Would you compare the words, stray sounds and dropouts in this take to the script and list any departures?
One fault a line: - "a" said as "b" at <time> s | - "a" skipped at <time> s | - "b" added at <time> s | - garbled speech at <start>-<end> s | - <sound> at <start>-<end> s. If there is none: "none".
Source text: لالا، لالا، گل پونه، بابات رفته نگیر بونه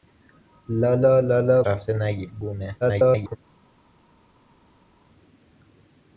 - "گل پونه بابات" skipped at 1.6 s
- garbled speech at 2.8-3.4 s